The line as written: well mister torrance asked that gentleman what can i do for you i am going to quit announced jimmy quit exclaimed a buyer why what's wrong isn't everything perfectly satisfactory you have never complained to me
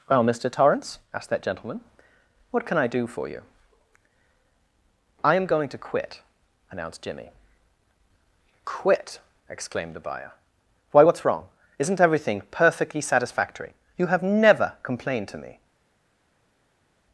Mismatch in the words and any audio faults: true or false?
true